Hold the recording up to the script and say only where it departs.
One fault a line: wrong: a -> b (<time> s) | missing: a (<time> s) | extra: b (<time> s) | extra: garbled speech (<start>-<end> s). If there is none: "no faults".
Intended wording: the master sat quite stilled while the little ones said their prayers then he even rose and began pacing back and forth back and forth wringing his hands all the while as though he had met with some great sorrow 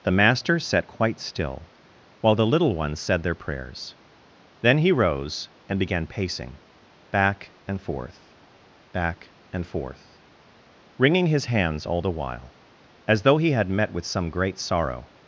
wrong: stilled -> still (1.2 s)
missing: even (4.9 s)